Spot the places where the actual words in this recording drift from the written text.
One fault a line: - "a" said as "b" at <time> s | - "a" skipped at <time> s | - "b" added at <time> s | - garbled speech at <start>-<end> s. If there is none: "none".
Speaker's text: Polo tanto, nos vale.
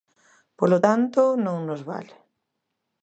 - "non" added at 1.4 s